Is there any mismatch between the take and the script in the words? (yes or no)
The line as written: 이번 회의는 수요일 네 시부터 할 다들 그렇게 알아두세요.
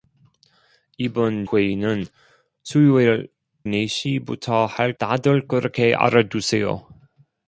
no